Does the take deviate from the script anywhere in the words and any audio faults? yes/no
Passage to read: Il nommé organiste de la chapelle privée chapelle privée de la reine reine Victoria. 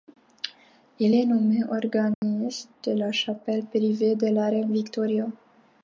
yes